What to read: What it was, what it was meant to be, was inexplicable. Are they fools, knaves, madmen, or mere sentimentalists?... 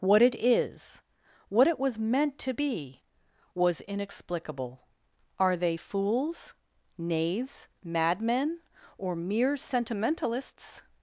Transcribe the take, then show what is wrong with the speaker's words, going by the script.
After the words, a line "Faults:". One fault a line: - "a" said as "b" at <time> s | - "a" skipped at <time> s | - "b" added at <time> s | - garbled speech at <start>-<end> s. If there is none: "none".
What it is, what it was meant to be, was inexplicable. Are they fools, knaves, madmen, or mere sentimentalists?...
Faults:
- "was" said as "is" at 0.3 s